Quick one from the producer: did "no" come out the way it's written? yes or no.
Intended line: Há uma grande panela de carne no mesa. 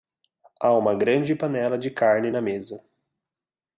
no